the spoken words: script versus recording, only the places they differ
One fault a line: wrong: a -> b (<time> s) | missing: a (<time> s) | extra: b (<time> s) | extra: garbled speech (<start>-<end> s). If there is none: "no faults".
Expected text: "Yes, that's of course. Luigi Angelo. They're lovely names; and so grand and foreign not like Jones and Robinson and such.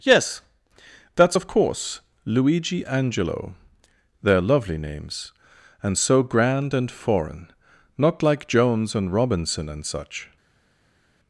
no faults